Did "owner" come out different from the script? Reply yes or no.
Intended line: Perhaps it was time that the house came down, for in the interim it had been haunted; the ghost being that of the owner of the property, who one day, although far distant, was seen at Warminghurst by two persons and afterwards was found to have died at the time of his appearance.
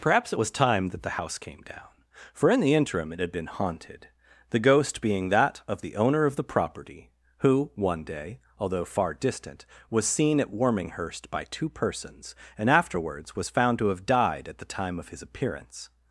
no